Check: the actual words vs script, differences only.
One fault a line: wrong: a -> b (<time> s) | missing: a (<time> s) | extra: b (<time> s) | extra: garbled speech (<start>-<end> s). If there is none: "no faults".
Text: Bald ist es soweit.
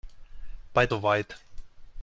missing: ist es (0.9 s)